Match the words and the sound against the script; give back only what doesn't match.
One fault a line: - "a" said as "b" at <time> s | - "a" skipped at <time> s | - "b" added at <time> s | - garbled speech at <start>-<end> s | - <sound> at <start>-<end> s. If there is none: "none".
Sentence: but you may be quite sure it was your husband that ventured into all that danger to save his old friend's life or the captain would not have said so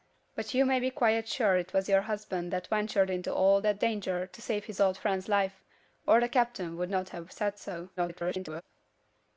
- garbled speech at 8.0-8.6 s